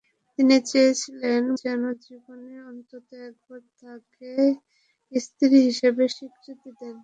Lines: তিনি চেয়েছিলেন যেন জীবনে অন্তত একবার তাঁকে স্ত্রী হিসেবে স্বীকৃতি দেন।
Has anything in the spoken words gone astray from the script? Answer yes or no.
no